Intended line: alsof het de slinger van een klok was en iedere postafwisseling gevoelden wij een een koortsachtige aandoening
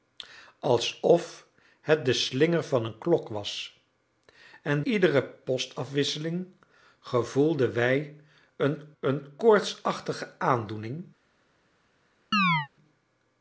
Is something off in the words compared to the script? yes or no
no